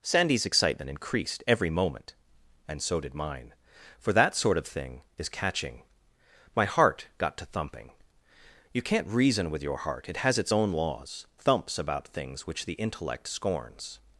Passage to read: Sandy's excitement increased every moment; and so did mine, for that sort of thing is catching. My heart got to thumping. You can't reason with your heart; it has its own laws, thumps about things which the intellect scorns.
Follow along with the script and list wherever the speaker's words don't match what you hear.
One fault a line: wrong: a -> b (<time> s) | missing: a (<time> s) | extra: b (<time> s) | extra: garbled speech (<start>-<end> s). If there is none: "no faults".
no faults